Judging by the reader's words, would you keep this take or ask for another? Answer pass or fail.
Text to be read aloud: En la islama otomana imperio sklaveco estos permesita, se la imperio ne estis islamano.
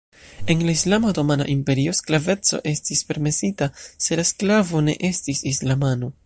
fail